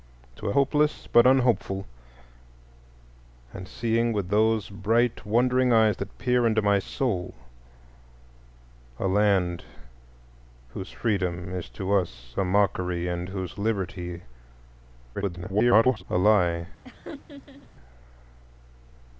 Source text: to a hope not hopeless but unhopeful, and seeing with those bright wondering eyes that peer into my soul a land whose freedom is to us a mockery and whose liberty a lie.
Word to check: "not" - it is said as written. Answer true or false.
false